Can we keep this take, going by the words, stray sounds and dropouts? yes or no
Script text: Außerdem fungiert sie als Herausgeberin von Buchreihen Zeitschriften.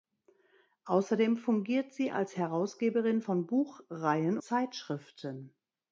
yes